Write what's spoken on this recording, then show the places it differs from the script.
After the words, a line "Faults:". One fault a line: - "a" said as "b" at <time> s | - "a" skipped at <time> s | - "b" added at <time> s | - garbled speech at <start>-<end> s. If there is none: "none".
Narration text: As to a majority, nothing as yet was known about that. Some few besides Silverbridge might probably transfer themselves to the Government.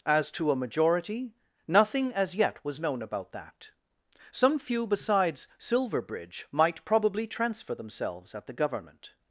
As to a majority, nothing as yet was known about that. Some few besides Silverbridge might probably transfer themselves at the Government.
Faults:
- "to" said as "at" at 8.3 s